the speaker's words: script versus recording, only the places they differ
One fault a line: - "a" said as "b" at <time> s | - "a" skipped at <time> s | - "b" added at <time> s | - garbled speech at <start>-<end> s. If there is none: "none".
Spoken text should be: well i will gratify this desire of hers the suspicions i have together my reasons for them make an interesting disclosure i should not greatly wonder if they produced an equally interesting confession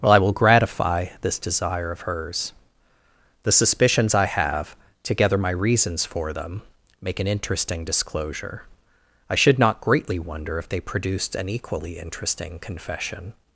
none